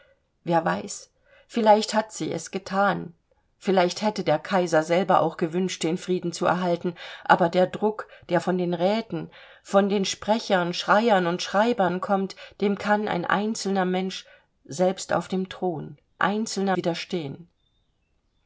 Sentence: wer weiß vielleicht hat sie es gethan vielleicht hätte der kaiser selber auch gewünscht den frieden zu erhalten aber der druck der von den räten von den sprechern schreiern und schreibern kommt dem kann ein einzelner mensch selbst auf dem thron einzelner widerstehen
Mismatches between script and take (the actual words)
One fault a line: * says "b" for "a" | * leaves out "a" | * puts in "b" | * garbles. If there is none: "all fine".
all fine